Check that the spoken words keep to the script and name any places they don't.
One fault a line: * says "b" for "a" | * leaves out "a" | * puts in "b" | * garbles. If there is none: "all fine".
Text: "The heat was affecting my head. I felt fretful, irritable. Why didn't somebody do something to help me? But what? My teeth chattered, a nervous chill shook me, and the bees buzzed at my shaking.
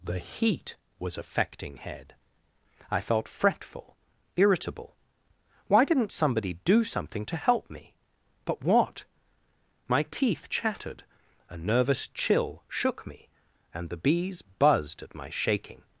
* leaves out "my"